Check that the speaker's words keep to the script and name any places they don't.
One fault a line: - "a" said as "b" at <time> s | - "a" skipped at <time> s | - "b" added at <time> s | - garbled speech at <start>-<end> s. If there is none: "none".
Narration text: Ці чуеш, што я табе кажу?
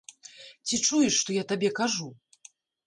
none